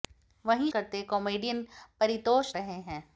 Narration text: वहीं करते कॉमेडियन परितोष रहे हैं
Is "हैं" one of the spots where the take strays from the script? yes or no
no